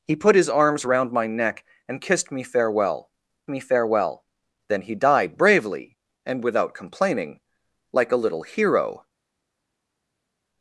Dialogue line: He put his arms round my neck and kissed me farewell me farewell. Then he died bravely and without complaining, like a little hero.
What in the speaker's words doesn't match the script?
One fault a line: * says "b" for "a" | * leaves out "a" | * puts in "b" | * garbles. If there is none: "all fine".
all fine